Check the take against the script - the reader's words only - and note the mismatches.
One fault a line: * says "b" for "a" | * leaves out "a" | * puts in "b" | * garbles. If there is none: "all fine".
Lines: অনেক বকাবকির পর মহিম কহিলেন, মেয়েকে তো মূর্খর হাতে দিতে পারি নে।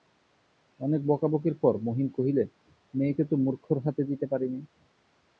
all fine